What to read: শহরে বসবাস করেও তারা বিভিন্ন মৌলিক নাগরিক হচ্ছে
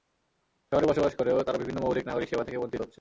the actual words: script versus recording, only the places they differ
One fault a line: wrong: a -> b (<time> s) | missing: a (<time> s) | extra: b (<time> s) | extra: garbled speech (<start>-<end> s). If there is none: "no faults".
extra: সেবা থেকে বঞ্চিত (2.3 s)